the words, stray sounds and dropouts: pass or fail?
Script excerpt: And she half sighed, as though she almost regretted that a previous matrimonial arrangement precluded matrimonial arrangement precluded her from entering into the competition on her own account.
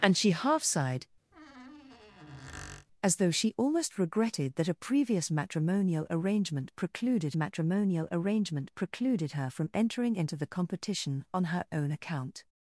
fail